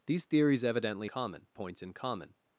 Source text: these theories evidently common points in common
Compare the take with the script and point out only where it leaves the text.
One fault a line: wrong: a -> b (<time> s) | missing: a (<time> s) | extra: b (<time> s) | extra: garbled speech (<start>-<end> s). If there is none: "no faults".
no faults